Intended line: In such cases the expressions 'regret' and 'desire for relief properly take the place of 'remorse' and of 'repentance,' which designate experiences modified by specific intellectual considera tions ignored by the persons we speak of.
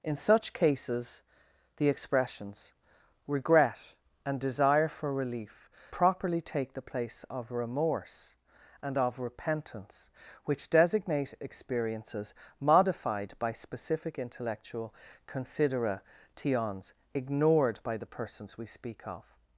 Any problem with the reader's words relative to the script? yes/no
no